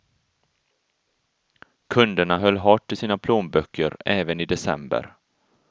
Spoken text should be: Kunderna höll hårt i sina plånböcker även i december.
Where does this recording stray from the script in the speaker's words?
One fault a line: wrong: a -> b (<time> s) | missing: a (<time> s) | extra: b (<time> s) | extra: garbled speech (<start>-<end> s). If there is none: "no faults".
no faults